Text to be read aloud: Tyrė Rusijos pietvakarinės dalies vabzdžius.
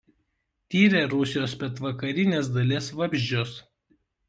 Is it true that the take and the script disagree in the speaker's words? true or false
false